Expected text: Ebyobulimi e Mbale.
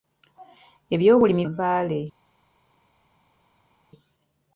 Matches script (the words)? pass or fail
pass